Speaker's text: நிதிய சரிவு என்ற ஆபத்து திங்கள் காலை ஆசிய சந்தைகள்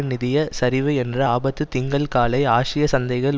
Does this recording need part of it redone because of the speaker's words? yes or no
no